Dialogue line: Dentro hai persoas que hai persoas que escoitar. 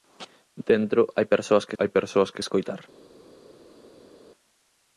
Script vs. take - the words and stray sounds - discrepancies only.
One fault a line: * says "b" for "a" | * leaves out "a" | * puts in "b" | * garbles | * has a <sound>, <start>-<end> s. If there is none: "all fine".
all fine